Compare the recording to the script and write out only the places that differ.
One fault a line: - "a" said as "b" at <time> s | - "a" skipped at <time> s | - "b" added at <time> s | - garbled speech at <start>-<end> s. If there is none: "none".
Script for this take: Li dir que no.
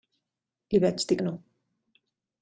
- "vaig" added at 0.8 s